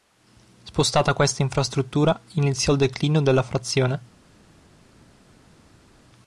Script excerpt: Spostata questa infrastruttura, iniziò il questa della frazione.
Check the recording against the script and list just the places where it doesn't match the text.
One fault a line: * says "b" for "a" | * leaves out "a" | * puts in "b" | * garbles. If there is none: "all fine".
* says "declino" for "questa"